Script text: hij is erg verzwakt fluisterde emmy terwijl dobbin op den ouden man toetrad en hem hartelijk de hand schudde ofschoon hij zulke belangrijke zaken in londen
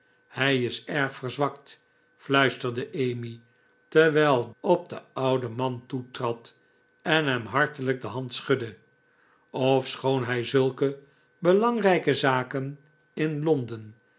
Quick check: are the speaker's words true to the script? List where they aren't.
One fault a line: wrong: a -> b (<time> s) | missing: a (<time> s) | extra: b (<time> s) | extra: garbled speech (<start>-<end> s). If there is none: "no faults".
missing: dobbin (4.5 s)